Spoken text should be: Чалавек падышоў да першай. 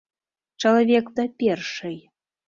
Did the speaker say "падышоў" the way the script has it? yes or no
no